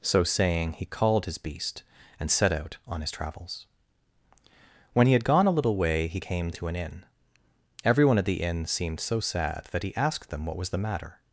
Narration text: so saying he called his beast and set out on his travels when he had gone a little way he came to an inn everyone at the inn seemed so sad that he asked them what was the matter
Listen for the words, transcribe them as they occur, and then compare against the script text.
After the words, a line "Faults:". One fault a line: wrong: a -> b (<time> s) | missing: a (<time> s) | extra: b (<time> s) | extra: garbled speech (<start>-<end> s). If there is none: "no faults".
so saying he called his beast and set out on his travels when he had gone a little way he came to an inn everyone at the inn seemed so sad that he asked them what was the matter
Faults:
no faults